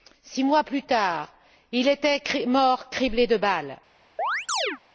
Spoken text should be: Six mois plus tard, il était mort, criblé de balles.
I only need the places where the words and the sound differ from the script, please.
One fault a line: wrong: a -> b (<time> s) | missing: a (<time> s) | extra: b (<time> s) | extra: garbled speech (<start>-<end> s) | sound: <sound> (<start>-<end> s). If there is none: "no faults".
sound: chirp (4.2-4.8 s)